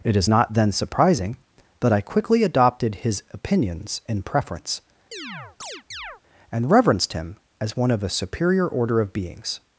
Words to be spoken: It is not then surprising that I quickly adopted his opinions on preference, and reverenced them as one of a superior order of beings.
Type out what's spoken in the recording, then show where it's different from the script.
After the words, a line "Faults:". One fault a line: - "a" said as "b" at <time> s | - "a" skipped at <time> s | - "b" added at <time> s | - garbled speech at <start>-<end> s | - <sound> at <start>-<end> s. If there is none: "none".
It is not then surprising that I quickly adopted his opinions in preference, and reverenced him as one of a superior order of beings.
Faults:
- "on" said as "in" at 4.1 s
- chirp at 5.1-6.2 s
- "them" said as "him" at 7.1 s